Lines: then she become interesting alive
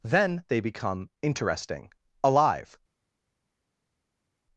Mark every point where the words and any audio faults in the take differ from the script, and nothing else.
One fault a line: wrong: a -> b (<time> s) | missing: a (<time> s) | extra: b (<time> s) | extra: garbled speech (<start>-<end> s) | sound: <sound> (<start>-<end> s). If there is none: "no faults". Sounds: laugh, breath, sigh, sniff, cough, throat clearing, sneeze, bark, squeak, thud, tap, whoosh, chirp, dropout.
wrong: she -> they (0.5 s)